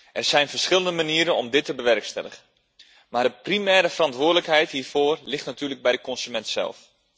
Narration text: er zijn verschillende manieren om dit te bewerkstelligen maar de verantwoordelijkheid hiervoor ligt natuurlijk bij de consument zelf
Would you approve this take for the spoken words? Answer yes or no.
no